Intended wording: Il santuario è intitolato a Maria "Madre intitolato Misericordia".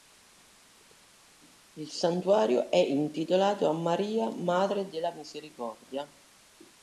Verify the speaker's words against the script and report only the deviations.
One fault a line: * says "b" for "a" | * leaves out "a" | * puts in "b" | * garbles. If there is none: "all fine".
* says "della" for "intitolato"